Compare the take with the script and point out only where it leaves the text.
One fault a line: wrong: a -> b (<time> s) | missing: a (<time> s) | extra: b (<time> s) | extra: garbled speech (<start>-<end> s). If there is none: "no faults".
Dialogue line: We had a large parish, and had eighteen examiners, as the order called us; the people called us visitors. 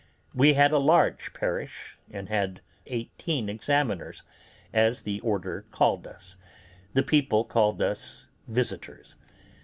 no faults